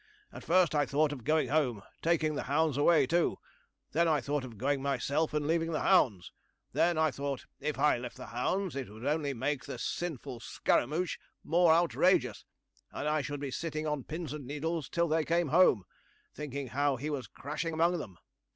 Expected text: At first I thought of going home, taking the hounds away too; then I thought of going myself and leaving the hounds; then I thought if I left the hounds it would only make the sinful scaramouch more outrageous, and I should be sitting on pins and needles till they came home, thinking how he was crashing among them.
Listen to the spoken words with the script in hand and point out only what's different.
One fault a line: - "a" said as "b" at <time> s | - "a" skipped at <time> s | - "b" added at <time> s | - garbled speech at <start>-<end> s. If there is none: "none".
none